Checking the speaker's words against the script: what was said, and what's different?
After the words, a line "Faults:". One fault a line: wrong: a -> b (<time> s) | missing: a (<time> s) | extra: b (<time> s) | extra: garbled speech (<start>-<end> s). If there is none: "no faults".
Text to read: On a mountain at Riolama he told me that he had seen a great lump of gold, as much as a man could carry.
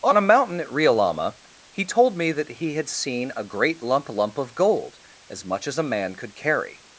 On a mountain at Riolama he told me that he had seen a great lump lump of gold, as much as a man could carry.
Faults:
extra: lump (4.1 s)